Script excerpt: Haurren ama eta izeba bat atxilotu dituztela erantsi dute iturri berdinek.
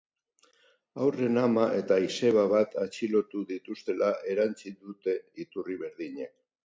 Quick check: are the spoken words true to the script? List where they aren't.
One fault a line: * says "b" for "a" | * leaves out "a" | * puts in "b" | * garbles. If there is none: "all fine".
all fine